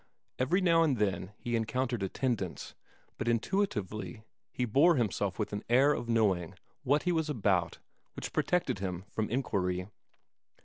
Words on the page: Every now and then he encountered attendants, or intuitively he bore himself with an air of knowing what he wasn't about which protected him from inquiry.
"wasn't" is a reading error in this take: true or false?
true